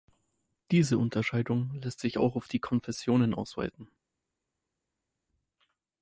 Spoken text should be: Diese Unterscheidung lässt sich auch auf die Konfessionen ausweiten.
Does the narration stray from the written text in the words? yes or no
no